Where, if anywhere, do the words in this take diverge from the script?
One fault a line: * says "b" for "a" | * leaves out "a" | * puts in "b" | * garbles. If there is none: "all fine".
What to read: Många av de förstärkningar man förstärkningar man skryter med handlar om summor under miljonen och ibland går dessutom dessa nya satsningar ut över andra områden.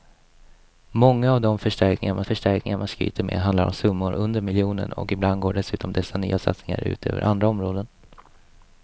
all fine